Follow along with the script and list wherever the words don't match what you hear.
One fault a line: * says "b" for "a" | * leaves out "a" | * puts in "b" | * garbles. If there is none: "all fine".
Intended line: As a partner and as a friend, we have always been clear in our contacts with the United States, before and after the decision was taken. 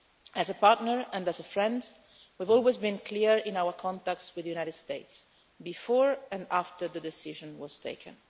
all fine